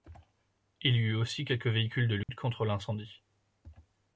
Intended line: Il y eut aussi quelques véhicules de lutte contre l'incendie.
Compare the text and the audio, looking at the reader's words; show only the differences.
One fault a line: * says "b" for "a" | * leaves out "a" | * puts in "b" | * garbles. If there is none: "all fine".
all fine